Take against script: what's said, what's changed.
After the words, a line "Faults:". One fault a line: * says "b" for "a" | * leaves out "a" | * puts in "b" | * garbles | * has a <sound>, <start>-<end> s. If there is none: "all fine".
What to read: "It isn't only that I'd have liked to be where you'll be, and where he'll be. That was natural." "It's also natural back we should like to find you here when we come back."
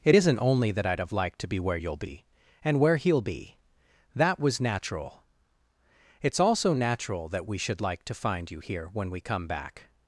"It isn't only that I'd have liked to be where you'll be, and where he'll be. That was natural." "It's also natural that we should like to find you here when we come back."
Faults:
* says "that" for "back"